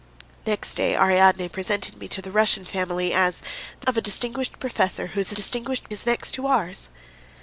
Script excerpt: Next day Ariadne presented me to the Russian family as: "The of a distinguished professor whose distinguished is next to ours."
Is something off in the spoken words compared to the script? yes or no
no